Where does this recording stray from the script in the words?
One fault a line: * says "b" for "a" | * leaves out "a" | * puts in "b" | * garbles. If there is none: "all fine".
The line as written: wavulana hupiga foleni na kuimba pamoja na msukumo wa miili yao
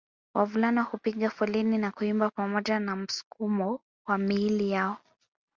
all fine